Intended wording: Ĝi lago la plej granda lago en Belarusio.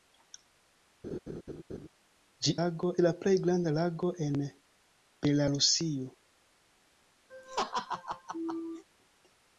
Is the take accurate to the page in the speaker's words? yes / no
yes